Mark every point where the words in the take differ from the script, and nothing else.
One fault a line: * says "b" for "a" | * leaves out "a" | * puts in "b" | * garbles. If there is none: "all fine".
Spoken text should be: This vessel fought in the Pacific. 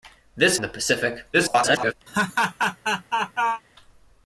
* leaves out "vessel fought"
* garbles